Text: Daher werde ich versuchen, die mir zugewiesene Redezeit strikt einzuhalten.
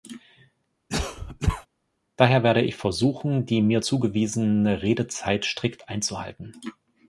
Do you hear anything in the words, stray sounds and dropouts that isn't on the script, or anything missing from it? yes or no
yes